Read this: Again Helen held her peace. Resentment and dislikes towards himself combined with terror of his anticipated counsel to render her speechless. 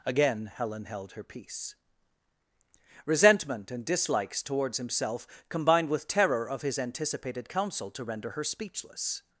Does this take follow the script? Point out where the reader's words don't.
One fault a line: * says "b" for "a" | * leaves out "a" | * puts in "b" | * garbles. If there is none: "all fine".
all fine